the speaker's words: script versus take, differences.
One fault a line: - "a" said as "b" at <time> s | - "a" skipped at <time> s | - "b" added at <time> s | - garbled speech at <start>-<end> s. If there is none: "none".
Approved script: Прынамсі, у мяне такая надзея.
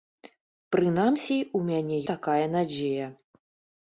none